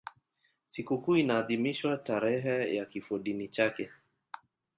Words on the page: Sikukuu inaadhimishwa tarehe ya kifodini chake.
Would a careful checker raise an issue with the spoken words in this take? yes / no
no